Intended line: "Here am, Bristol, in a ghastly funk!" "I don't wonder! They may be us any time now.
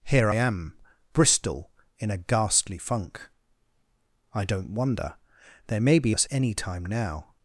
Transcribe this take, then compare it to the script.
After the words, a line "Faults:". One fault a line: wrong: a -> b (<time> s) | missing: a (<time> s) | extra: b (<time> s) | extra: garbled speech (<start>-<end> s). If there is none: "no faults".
"Here am, Bristol, in a ghastly funk!" "I don't wonder! They may be us any time now.
Faults:
no faults